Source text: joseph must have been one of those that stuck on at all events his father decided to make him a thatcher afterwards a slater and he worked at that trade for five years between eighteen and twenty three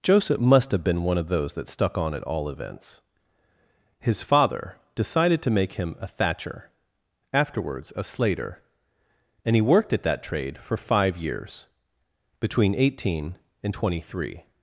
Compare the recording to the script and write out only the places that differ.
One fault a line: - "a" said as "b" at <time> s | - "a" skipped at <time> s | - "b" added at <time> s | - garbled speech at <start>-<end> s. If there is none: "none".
none